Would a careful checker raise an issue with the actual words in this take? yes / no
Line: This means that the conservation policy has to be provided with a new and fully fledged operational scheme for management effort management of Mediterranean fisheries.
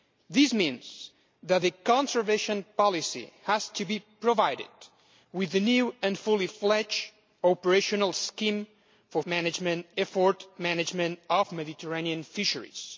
no